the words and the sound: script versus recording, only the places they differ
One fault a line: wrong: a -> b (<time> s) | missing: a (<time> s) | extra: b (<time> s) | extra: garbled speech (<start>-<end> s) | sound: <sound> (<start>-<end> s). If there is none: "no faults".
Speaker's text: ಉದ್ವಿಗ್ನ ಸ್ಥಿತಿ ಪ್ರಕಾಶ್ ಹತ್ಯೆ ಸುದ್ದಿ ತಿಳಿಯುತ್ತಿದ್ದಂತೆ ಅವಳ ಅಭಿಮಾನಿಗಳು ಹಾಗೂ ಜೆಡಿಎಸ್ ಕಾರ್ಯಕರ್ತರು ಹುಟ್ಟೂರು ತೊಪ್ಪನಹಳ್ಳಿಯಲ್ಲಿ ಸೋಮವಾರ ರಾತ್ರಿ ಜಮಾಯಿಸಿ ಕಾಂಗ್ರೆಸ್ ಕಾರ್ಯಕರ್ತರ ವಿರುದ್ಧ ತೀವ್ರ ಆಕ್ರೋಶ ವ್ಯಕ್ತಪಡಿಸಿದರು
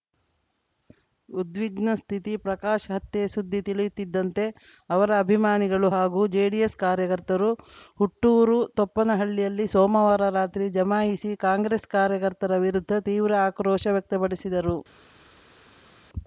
wrong: ಅವಳ -> ಅವರ (4.9 s)